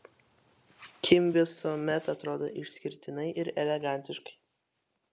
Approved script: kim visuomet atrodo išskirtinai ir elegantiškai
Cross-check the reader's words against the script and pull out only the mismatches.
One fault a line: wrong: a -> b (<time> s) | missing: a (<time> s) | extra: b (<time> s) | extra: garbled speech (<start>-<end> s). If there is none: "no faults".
no faults